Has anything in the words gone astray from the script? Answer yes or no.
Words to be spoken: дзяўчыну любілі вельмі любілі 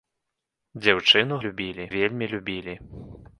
no